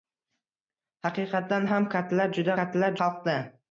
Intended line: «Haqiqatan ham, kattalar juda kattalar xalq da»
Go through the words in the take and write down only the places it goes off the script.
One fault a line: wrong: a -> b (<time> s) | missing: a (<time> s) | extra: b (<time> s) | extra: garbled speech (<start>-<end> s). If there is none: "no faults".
no faults